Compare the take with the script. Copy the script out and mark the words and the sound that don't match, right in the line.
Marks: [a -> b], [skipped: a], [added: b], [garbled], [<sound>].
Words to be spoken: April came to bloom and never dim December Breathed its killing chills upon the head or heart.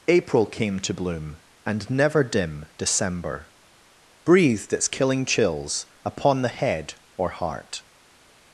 April came to bloom and never dim December Breathed its killing chills upon the head or heart.